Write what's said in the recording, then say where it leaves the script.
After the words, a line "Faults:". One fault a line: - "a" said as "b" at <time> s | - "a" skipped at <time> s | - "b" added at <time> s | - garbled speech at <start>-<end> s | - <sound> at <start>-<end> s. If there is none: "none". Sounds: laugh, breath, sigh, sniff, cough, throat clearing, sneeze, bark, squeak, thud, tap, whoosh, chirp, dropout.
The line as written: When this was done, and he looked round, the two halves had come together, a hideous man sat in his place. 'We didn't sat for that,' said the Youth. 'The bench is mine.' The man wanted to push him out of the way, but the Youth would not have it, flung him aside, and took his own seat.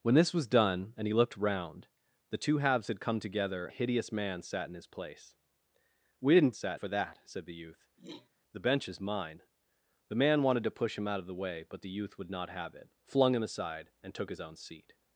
When this was done, and he looked round, the two halves had come together, a hideous man sat in his place. 'We didn't sat for that,' said the Youth. 'The bench is mine.' The man wanted to push him out of the way, but the Youth would not have it, flung him aside, and took his own seat.
Faults:
- throat clearing at 8.0-8.3 s